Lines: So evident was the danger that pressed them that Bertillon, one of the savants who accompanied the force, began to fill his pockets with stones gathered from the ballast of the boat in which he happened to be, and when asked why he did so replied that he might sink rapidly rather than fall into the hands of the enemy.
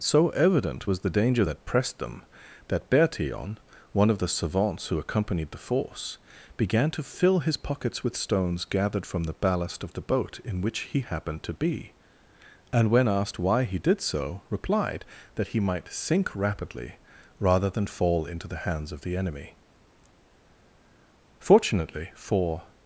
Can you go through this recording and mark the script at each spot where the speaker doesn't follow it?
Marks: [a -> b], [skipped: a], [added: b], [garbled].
So evident was the danger that pressed them that Bertillon, one of the savants who accompanied the force, began to fill his pockets with stones gathered from the ballast of the boat in which he happened to be, and when asked why he did so replied that he might sink rapidly rather than fall into the hands of the enemy. [added: Fortunately for]